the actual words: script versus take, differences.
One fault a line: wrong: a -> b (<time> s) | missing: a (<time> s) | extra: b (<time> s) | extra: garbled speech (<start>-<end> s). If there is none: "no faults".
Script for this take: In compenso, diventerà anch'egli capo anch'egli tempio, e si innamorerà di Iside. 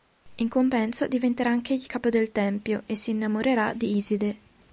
wrong: anch'egli -> del (2.1 s)